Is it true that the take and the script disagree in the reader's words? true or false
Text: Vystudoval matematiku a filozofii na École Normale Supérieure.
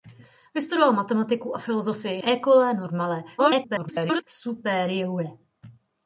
true